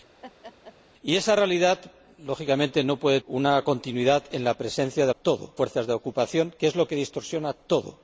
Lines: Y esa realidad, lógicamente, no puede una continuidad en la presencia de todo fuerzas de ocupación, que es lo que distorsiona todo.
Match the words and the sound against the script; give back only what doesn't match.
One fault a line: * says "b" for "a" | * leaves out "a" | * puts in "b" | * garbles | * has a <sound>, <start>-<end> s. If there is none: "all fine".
* has a laugh, 0.2-0.8 s